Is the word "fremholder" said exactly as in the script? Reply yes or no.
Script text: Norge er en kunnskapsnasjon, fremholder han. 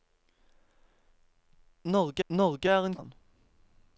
no